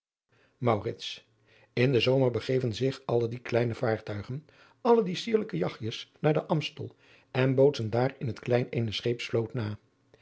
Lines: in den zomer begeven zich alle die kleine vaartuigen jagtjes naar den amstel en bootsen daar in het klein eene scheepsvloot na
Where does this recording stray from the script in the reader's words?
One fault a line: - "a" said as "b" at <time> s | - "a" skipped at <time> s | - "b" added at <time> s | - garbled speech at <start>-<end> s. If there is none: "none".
- "alle die sierlijke" added at 4.8 s